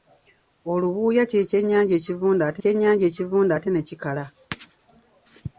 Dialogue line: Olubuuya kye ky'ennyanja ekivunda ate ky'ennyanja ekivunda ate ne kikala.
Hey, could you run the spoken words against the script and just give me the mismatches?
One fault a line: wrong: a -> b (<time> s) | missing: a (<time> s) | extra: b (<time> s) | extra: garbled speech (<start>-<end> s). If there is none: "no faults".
no faults